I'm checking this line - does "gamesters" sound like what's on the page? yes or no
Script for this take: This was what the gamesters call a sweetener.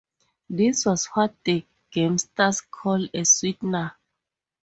yes